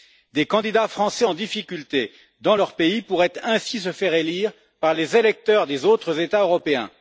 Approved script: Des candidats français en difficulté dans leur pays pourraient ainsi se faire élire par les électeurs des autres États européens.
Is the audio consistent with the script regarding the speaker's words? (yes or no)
yes